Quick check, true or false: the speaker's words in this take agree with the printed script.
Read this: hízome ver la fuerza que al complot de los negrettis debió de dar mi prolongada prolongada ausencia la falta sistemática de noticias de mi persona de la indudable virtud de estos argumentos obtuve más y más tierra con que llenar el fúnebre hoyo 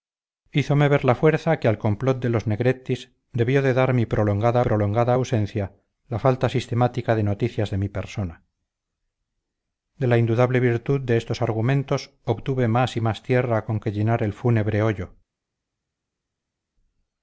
true